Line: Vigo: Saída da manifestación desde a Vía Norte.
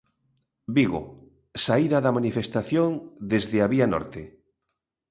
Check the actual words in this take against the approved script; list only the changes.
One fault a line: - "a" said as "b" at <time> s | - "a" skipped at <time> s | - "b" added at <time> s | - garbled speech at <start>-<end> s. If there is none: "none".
none